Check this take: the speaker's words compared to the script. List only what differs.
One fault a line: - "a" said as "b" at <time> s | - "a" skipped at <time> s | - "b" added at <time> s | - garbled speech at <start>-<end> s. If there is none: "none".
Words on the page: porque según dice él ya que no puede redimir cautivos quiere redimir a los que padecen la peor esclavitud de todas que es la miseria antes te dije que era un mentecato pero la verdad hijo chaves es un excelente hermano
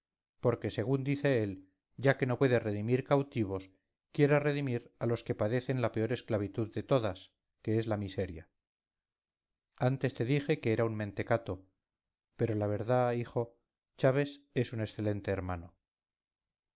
none